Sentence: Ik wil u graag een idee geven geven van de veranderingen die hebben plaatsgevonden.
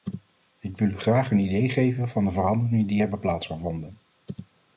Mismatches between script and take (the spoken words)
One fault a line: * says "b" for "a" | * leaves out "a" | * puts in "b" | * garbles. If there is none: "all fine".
* leaves out "geven"